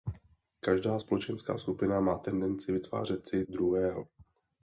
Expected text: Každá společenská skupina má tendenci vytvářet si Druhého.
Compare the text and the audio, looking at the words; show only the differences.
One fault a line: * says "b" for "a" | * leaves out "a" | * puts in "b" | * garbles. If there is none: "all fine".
all fine